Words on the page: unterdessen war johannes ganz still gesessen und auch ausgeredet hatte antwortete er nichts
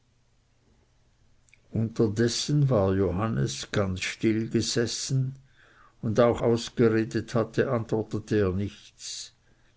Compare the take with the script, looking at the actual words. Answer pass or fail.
pass